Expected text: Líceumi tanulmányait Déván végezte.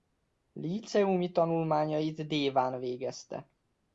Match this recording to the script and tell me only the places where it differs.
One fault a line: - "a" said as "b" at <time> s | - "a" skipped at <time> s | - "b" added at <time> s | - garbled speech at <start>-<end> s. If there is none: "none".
none